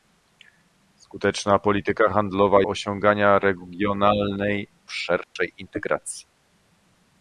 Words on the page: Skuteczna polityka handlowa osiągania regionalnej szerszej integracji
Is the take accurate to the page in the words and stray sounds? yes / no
no